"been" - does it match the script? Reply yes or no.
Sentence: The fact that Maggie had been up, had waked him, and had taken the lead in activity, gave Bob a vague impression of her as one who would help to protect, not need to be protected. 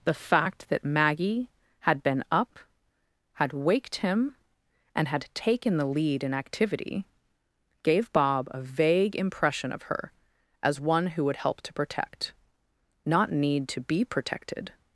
yes